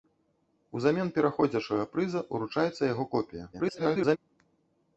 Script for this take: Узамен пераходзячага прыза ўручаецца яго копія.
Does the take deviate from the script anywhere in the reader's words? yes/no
yes